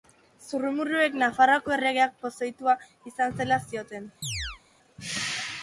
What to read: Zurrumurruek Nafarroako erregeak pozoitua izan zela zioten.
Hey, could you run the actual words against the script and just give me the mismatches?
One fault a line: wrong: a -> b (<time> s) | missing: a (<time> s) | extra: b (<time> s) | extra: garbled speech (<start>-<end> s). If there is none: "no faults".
no faults